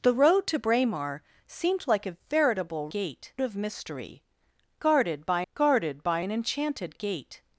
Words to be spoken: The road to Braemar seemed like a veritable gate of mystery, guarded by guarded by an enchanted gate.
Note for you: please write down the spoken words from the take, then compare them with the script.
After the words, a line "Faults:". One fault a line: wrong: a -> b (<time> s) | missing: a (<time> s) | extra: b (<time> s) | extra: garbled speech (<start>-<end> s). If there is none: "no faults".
The road to Braemar seemed like a veritable gate of mystery, guarded by guarded by an enchanted gate.
Faults:
no faults